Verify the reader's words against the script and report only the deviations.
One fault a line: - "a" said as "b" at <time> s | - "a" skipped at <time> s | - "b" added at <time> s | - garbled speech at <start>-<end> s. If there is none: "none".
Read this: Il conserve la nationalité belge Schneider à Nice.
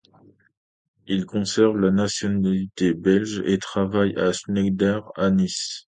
- "et travaille à" added at 3.5 s